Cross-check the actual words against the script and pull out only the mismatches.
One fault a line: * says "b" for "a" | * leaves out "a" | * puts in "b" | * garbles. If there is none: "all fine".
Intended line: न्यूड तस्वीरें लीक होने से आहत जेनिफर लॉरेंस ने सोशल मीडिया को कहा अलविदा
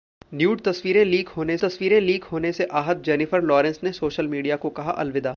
* puts in "तस्वीरें लीक होने"